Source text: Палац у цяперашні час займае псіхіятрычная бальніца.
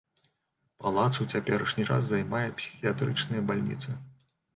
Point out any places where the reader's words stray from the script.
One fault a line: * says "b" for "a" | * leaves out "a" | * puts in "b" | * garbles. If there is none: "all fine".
all fine